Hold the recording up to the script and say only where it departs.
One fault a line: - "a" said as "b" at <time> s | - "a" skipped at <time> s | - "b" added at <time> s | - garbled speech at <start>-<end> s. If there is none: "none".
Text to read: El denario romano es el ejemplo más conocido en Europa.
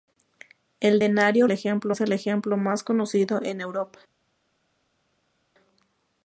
- "romano" said as "ejemplo" at 1.5 s